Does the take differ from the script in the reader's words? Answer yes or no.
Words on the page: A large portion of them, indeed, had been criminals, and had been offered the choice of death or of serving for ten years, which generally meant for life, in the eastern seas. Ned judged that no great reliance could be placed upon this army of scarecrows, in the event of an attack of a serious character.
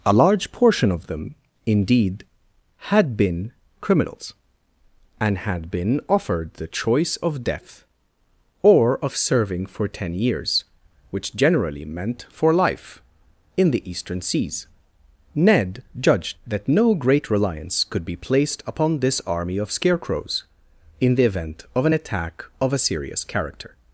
no